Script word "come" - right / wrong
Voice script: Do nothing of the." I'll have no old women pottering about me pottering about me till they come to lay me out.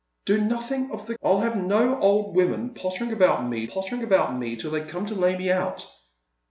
right